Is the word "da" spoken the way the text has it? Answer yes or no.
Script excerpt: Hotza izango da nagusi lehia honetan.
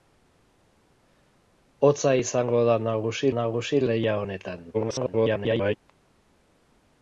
yes